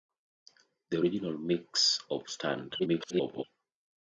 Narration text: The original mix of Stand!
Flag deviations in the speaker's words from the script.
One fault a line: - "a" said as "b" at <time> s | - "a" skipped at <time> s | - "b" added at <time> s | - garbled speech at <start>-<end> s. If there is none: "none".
- garbled speech at 2.8-3.4 s